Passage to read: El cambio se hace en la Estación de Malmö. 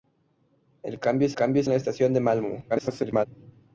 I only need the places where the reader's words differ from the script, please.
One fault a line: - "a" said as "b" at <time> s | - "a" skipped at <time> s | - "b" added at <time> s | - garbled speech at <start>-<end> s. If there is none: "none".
- "hace" said as "cambio" at 1.3 s
- garbled speech at 2.7-3.3 s